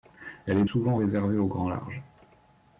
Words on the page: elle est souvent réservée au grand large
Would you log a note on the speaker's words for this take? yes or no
no